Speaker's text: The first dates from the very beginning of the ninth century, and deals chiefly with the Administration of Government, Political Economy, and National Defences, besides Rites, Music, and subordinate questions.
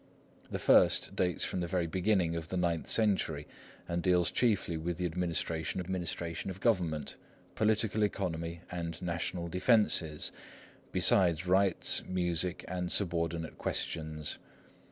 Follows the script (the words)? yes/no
no